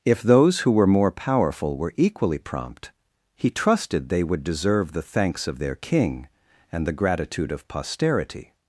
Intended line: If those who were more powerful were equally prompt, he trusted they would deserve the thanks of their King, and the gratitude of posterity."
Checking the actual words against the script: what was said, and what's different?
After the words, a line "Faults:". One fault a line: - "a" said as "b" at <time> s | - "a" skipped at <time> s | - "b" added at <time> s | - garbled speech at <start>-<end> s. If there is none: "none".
If those who were more powerful were equally prompt, he trusted they would deserve the thanks of their King, and the gratitude of posterity."
Faults:
none